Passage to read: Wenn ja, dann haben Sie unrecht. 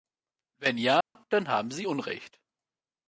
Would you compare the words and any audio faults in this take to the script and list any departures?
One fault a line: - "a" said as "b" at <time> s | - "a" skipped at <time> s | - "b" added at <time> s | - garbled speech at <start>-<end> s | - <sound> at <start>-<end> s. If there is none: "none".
- dropout at 1.0-1.2 s